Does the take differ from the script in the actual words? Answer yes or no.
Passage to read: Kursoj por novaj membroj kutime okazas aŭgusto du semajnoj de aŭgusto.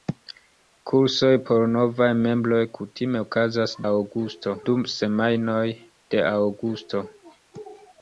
no